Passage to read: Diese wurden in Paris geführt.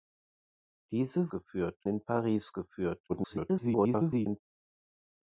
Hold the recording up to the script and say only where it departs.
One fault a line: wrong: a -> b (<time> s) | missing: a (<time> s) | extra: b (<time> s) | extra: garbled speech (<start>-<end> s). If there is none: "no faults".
wrong: wurden -> geführt (1.3 s)
extra: garbled speech (3.1-4.4 s)